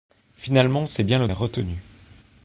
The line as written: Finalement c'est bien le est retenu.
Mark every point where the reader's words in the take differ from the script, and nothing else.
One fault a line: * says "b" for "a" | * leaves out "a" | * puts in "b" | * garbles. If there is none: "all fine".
all fine